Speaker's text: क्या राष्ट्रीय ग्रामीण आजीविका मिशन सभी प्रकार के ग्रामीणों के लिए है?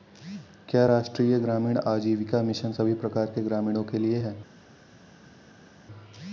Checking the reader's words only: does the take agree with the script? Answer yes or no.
yes